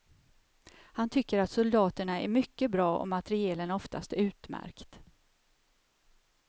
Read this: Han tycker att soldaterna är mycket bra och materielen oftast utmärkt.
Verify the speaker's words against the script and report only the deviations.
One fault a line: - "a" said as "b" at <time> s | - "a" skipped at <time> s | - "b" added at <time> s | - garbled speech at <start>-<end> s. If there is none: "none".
none